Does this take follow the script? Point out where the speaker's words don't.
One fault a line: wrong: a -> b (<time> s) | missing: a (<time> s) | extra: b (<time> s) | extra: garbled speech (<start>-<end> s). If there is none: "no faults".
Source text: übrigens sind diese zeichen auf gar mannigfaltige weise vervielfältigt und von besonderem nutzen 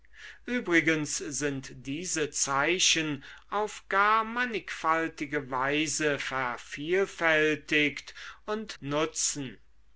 missing: von besonderem (8.7 s)